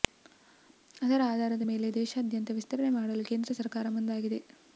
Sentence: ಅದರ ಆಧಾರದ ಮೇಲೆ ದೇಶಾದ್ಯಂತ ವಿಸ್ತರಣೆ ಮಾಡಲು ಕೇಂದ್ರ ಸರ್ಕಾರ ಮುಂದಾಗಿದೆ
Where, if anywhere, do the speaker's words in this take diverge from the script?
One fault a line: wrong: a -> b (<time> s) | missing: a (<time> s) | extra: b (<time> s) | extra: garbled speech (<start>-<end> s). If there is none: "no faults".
no faults